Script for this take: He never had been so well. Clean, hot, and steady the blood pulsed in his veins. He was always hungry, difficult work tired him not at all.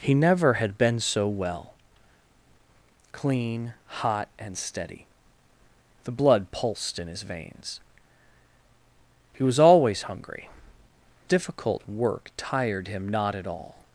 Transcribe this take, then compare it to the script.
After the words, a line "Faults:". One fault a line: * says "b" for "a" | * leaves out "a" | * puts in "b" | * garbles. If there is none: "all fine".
He never had been so well. Clean, hot, and steady the blood pulsed in his veins. He was always hungry, difficult work tired him not at all.
Faults:
all fine